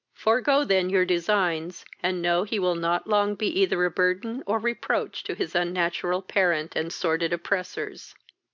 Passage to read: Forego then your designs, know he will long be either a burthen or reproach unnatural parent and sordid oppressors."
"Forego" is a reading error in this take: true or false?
false